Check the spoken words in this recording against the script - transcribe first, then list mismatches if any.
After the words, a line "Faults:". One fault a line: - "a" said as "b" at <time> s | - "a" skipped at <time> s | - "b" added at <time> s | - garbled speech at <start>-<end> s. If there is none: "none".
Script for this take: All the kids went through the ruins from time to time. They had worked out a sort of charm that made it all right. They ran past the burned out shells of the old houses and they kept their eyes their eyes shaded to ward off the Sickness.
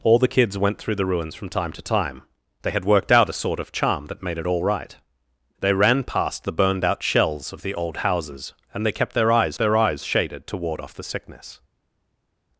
All the kids went through the ruins from time to time. They had worked out a sort of charm that made it all right. They ran past the burned out shells of the old houses and they kept their eyes their eyes shaded to ward off the Sickness.
Faults:
none